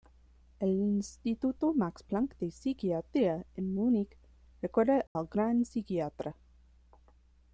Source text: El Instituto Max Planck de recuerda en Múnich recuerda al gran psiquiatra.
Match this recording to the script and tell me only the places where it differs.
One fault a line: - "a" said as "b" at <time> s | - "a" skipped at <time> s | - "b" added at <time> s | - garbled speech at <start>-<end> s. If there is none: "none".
- "recuerda" said as "psiquiatría" at 2.5 s